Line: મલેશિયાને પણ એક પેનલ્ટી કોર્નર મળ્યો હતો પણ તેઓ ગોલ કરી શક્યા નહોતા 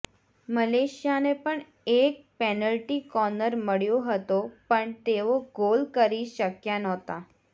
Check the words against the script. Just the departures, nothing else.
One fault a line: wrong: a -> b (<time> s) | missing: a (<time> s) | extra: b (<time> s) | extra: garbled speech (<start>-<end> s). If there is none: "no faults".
no faults